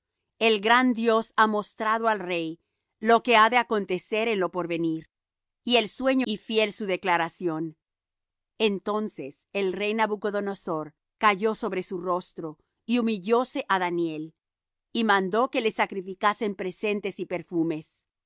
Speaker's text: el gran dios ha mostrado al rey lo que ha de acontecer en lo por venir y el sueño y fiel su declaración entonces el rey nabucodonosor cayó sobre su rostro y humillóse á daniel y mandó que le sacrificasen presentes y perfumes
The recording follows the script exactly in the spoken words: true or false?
true